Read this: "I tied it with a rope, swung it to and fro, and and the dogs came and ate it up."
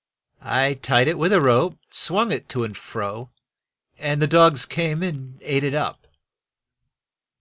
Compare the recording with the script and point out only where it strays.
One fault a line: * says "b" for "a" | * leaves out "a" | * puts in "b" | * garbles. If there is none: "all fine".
* leaves out "and"